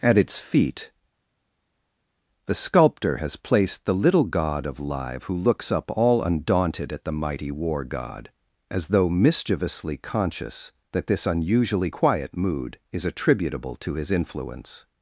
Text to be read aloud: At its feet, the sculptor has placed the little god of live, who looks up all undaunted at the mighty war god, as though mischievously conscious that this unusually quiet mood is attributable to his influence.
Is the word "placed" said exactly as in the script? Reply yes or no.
yes